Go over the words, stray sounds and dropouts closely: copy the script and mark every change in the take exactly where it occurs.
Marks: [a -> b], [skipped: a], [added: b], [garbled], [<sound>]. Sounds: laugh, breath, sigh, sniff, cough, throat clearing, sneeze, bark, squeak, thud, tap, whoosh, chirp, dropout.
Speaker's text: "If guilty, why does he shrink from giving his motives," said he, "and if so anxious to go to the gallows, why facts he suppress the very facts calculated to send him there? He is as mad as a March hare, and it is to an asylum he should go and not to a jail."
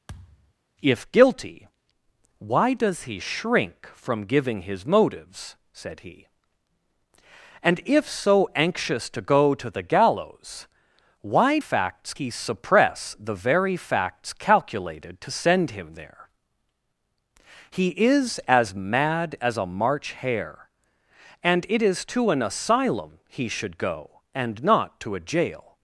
[thud] "If guilty, why does he shrink from giving his motives," said he, "and if so anxious to go to the gallows, why facts he suppress the very facts calculated to send him there? He is as mad as a March hare, and it is to an asylum he should go and not to a jail."